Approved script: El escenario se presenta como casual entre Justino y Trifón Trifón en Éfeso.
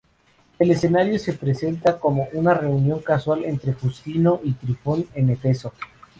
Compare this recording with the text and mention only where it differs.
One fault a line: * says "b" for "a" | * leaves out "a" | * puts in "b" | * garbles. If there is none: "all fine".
* puts in "una reunión"
* leaves out "Trifón"